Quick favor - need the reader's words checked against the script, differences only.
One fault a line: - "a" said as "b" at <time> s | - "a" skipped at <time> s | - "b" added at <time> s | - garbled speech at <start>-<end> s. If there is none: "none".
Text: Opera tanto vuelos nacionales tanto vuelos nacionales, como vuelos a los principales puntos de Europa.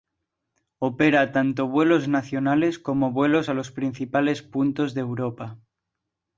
- "tanto vuelos nacionales" skipped at 2.8 s